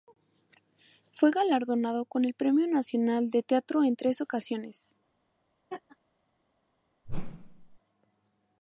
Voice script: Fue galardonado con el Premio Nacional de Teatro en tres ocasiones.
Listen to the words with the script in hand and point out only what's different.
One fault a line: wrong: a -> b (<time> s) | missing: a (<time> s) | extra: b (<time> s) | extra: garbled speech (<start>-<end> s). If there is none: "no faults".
no faults